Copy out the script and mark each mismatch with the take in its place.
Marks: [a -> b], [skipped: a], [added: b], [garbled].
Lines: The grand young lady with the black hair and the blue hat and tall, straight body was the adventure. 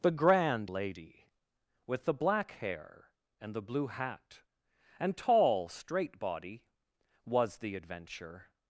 The grand [skipped: young] lady with the black hair and the blue hat and tall, straight body was the adventure.